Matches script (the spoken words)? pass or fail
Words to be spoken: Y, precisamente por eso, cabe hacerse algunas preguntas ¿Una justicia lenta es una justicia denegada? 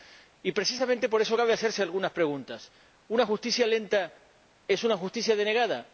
pass